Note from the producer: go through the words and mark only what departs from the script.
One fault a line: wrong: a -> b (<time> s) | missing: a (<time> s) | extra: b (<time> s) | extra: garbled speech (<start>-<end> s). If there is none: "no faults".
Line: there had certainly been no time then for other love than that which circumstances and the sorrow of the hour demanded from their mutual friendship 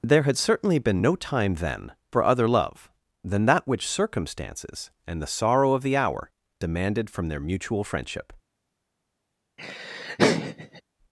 no faults